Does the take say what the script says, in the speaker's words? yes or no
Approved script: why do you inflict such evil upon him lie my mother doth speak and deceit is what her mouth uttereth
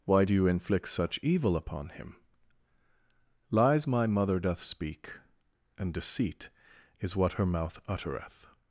no